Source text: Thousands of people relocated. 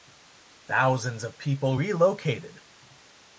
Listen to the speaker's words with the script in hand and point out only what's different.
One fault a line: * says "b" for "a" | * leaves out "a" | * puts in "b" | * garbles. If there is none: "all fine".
all fine